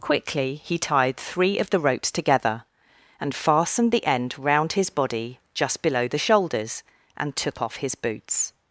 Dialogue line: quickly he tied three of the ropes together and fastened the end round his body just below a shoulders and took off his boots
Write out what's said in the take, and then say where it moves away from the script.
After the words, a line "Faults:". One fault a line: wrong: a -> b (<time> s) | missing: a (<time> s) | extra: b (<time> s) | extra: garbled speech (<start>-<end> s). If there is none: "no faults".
quickly he tied three of the ropes together and fastened the end round his body just below the shoulders and took off his boots
Faults:
wrong: a -> the (6.1 s)